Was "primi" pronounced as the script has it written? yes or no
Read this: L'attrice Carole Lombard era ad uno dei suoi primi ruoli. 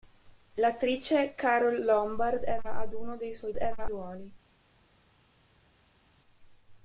no